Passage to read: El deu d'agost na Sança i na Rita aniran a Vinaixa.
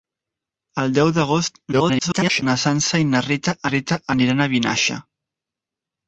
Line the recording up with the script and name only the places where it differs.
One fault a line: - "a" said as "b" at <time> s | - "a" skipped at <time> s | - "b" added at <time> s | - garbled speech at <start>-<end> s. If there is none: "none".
- garbled speech at 1.7-2.4 s
- "Rita" added at 3.7 s